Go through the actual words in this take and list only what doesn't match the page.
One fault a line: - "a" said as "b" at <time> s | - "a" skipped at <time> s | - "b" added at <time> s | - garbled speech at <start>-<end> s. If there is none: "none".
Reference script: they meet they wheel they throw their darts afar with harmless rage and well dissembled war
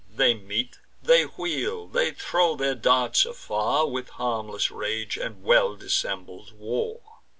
none